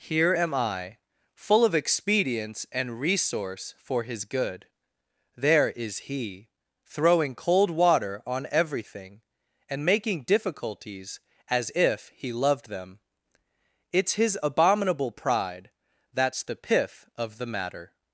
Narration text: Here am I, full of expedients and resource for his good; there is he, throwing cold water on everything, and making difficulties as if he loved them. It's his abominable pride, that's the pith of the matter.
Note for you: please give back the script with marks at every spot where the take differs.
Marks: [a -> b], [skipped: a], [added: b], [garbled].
Here am I, full of expedients and resource for his good; there is he, throwing cold water on everything, and making difficulties as if he loved them. It's his abominable pride, that's the pith of the matter.